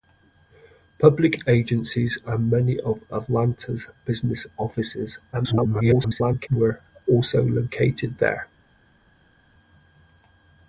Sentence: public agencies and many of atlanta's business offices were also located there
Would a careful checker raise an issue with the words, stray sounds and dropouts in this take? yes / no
yes